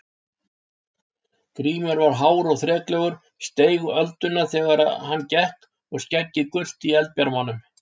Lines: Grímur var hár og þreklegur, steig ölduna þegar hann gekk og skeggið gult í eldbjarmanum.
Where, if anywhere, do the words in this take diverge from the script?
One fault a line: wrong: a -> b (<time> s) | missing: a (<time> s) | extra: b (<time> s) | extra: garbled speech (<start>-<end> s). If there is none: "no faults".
no faults